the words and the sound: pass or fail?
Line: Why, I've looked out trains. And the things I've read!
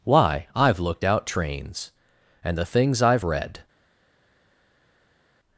pass